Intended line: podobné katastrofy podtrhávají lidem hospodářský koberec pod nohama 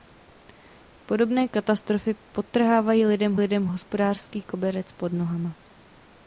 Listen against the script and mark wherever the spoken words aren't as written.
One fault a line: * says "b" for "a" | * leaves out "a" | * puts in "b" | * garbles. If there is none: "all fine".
* puts in "lidem"